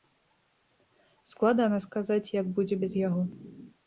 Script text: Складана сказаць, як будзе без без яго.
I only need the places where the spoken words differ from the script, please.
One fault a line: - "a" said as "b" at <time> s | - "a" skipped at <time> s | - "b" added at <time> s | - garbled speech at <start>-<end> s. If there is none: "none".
- "без" skipped at 3.0 s